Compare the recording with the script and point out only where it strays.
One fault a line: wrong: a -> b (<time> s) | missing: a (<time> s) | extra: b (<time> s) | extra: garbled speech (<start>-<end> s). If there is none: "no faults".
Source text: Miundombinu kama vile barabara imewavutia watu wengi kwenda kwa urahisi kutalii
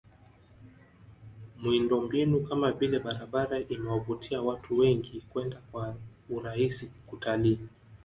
no faults